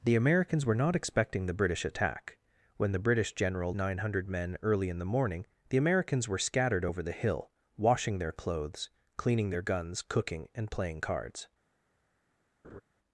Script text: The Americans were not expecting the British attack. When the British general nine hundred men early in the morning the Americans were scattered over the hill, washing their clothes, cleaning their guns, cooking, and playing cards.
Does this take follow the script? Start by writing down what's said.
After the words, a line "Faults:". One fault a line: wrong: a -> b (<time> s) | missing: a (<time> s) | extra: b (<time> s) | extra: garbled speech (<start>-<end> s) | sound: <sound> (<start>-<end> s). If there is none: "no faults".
The Americans were not expecting the British attack. When the British general nine hundred men early in the morning the Americans were scattered over the hill, washing their clothes, cleaning their guns, cooking, and playing cards.
Faults:
sound: laugh (12.6-12.8 s)